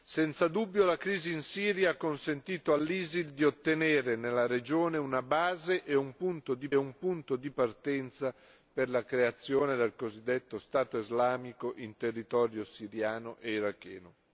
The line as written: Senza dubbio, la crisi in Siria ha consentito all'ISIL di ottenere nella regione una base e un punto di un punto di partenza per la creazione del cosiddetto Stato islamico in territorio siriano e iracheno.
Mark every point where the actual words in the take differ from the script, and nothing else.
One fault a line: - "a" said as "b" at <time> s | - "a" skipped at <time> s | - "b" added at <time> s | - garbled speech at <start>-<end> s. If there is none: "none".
none